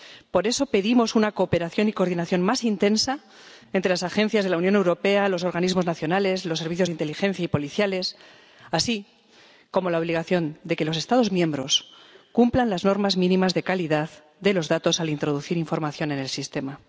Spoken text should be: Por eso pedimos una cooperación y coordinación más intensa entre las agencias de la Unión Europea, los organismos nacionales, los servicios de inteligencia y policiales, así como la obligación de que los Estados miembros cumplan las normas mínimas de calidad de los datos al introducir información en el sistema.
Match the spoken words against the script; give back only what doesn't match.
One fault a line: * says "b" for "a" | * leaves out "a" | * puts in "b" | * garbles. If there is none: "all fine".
all fine